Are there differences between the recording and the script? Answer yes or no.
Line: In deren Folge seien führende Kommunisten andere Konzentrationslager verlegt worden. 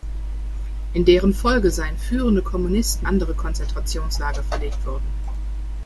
no